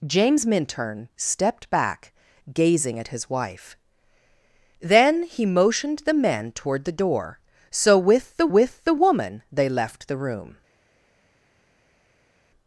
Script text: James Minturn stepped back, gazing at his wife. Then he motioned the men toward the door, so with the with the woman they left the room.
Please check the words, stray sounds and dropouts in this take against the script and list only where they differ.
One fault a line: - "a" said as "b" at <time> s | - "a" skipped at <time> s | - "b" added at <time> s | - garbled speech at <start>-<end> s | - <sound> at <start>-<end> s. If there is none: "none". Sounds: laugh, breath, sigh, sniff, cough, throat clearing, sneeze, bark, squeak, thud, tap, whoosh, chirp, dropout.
none